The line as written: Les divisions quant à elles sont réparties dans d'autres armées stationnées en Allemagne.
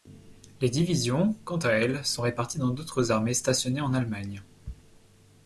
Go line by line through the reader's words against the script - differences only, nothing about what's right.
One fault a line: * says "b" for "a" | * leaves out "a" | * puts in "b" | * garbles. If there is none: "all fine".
all fine